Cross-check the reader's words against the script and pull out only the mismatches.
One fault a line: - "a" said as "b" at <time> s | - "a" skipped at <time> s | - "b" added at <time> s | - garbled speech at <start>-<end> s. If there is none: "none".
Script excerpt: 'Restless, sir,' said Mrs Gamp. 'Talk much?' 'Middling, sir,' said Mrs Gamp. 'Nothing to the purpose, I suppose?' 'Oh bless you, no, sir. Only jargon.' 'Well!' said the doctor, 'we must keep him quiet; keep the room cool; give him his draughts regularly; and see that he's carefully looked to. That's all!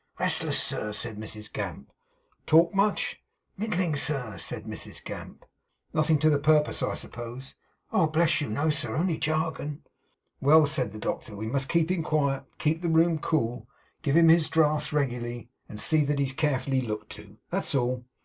none